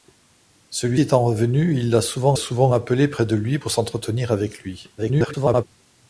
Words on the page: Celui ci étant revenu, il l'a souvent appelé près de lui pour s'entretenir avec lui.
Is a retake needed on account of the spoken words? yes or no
yes